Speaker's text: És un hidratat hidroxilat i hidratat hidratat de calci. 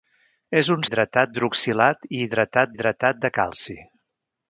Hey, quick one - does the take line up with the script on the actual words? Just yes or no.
yes